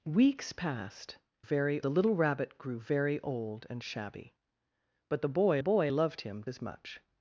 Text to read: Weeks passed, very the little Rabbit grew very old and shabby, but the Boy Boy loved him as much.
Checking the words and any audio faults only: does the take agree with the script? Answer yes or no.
yes